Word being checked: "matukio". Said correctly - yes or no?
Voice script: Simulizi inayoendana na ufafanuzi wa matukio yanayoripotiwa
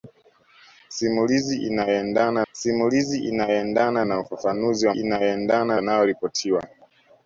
no